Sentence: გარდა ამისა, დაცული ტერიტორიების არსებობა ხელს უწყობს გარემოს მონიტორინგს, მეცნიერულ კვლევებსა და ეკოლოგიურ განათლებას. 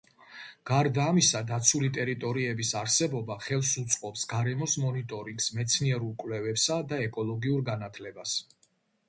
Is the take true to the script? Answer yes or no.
yes